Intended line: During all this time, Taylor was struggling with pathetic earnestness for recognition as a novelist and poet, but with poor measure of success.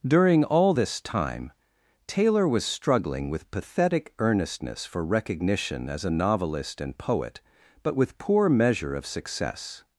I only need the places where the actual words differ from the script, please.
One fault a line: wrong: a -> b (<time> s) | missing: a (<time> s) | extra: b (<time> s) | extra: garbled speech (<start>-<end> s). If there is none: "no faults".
no faults